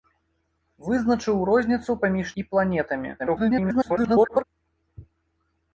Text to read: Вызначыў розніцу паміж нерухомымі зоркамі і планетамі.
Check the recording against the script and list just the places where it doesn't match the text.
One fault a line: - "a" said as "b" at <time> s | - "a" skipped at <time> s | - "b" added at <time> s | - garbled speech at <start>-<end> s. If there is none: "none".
- "нерухомымі зоркамі" skipped at 2.3 s
- garbled speech at 3.2-4.4 s